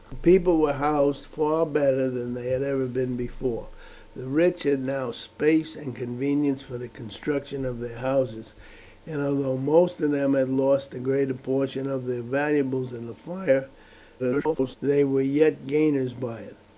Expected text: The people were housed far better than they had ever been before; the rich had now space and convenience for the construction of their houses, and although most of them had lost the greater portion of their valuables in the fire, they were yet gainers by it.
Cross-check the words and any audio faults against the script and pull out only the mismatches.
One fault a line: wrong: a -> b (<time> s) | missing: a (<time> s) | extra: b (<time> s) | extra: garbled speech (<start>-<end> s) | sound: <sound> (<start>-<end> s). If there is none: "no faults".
extra: garbled speech (14.2-14.8 s)